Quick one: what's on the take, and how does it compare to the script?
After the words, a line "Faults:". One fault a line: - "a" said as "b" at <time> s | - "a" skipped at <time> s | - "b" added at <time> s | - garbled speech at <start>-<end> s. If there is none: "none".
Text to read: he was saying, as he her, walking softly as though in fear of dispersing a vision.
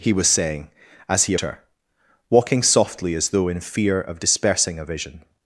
he was saying, as he her, walking softly as though in fear of dispersing a vision.
Faults:
none